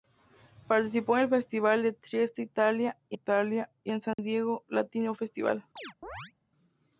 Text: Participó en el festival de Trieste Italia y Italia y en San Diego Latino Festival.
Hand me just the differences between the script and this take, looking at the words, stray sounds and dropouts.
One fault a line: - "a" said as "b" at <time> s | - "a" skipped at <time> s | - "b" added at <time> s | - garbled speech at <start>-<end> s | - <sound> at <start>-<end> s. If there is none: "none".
- dropout at 4.1-4.2 s
- chirp at 5.8-6.3 s